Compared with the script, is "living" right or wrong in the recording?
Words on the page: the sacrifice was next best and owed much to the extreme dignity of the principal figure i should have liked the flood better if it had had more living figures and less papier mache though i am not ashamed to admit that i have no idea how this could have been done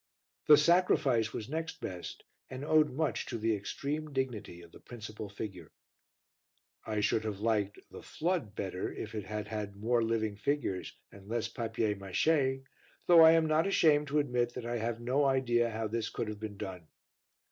right